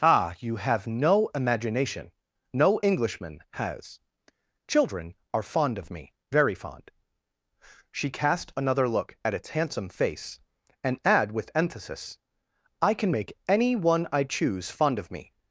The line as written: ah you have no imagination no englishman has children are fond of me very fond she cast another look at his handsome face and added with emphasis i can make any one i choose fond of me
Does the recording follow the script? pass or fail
fail